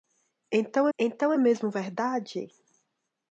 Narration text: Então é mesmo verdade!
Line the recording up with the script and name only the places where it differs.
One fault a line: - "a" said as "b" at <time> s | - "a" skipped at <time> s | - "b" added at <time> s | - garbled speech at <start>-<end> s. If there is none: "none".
- "então" added at 1.0 s